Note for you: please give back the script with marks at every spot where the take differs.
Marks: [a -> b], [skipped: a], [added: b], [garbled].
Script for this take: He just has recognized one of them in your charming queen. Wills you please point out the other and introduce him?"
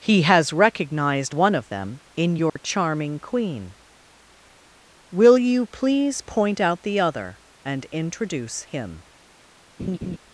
He [skipped: just] has recognized one of them in your charming queen. [Wills -> Will] you please point out the other and introduce him?"